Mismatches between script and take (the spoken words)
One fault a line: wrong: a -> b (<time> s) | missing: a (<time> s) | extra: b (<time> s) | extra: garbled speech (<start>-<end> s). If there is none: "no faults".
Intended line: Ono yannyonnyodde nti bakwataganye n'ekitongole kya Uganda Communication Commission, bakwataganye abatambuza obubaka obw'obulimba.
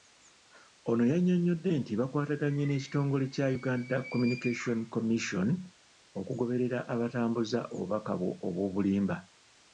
wrong: bakwataganye -> okugoberera (6.2 s)